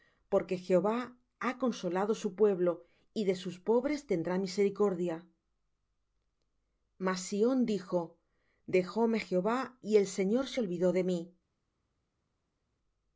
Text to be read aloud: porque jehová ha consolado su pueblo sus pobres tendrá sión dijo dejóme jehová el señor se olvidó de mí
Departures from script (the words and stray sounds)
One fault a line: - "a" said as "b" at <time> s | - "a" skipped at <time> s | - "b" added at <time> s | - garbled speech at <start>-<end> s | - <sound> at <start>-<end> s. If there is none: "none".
- "y de" added at 3.1 s
- "misericordia mas" added at 4.4 s
- "y" added at 9.8 s